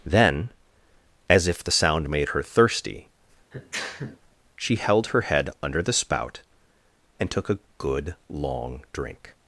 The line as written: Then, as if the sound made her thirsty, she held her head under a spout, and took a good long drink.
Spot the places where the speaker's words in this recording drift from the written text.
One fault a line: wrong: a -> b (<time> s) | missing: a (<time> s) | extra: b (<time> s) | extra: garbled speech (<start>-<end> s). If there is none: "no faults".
wrong: a -> the (5.8 s)